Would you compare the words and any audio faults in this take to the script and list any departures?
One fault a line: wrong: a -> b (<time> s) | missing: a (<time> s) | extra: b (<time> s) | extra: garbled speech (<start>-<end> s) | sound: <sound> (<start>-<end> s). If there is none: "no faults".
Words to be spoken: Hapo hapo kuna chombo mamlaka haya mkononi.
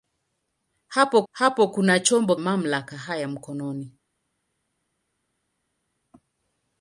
no faults